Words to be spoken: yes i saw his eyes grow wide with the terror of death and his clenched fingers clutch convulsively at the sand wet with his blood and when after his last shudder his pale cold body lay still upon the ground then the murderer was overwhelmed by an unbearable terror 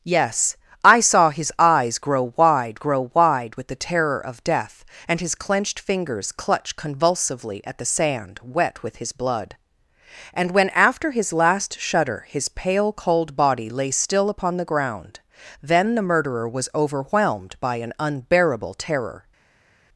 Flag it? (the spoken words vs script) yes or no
yes